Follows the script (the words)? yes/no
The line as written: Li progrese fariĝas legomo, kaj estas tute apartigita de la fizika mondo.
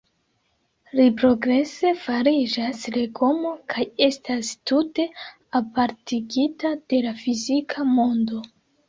yes